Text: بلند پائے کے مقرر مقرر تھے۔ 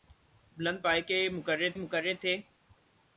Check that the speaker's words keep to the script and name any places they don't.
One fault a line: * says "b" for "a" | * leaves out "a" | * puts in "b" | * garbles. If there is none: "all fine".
all fine